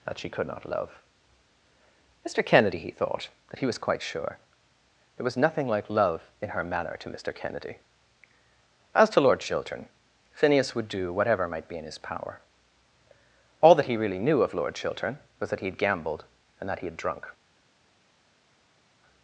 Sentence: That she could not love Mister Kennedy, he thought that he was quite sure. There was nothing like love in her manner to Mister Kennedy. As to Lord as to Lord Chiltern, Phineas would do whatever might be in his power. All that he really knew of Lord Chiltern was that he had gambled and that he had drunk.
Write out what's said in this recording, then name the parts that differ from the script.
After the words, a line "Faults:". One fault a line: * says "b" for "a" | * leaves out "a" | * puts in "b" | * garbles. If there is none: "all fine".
That she could not love Mister Kennedy, he thought that he was quite sure. There was nothing like love in her manner to Mister Kennedy. As to Lord Chiltern, Phineas would do whatever might be in his power. All that he really knew of Lord Chiltern was that he had gambled and that he had drunk.
Faults:
* leaves out "as to Lord"